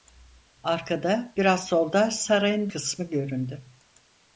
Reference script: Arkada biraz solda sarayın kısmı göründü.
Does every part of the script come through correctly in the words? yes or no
yes